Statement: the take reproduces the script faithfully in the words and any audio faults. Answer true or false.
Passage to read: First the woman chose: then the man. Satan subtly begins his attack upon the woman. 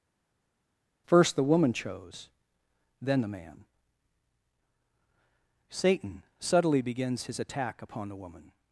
true